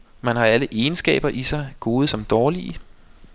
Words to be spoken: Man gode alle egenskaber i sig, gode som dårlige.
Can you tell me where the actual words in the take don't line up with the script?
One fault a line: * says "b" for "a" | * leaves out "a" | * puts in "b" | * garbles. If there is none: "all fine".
* says "har" for "gode"